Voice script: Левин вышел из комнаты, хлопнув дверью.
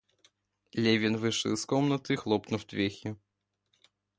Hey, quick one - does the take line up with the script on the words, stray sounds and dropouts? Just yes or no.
yes